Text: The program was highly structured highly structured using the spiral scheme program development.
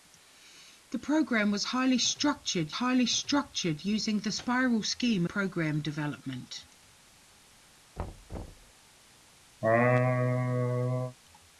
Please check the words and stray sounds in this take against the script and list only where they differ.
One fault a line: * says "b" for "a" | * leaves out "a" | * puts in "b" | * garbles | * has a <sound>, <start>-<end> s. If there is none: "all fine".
* has a thud, 8.0-8.7 s
* has a laugh, 9.6-11.2 s